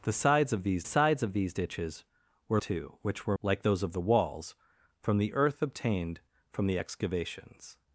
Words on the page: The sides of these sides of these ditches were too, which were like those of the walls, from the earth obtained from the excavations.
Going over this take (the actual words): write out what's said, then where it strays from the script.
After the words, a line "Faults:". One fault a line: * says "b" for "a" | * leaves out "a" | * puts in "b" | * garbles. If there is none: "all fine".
The sides of these sides of these ditches were too, which were like those of the walls, from the earth obtained from the excavations.
Faults:
all fine